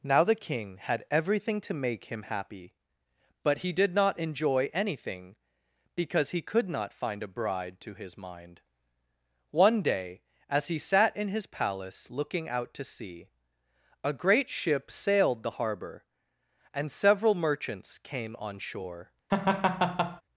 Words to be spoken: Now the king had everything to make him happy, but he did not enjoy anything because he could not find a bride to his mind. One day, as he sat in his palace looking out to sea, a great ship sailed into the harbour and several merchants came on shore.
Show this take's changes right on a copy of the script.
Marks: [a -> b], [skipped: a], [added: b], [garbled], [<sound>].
Now the king had everything to make him happy, but he did not enjoy anything because he could not find a bride to his mind. One day, as he sat in his palace looking out to sea, a great ship sailed [skipped: into] the harbour and several merchants came on shore. [laugh]